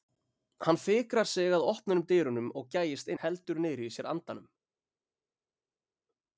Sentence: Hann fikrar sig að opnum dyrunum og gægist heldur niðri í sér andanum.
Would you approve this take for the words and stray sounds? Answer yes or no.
yes